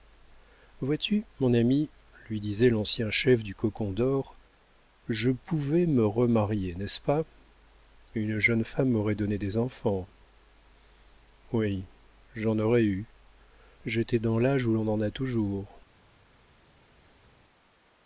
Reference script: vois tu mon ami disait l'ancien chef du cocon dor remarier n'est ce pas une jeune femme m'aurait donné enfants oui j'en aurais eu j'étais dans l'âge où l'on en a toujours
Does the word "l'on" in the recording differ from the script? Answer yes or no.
no